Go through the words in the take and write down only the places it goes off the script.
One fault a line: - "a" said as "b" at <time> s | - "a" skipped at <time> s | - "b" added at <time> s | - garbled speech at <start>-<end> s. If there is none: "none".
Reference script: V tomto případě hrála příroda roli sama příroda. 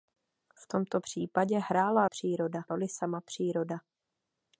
none